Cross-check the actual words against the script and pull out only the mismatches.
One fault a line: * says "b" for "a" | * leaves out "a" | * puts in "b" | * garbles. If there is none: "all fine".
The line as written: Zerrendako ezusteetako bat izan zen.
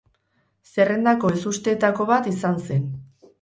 all fine